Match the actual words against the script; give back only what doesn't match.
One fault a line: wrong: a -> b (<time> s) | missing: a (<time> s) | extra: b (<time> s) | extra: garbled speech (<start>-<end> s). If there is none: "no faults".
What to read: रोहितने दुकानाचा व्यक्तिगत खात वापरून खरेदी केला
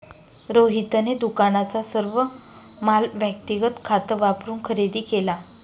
extra: सर्व माल (1.8 s)